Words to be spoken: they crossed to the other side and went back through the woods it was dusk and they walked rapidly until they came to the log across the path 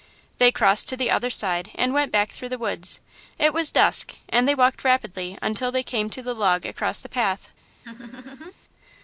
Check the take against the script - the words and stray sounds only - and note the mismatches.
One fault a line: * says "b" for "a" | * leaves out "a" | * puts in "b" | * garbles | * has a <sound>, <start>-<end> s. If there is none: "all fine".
* has a laugh, 7.8-8.5 s